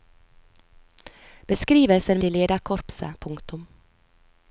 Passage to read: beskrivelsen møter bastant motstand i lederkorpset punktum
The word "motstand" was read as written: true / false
false